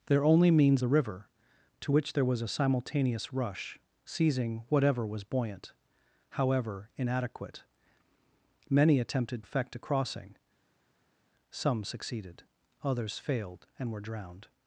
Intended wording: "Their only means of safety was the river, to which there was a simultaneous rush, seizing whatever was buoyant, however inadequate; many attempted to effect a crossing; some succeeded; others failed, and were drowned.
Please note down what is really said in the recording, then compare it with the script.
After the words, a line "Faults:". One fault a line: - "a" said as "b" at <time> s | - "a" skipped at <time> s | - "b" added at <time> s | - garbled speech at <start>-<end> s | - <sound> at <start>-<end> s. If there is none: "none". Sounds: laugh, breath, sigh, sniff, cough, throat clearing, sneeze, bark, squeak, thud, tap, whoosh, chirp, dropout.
"Their only means the river, to which there was a simultaneous rush, seizing whatever was buoyant, however inadequate; many attempted effect a crossing; some succeeded; others failed, and were drowned.
Faults:
- "of safety was" skipped at 0.8 s
- "to" skipped at 9.4 s